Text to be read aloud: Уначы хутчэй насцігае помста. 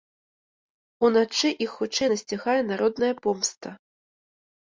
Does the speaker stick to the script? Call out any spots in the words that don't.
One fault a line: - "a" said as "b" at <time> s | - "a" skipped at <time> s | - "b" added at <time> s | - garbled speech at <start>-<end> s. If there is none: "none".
- "іх" added at 1.6 s
- "народная" added at 2.7 s